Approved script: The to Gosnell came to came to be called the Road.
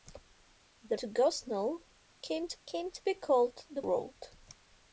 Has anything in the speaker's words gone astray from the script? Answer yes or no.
no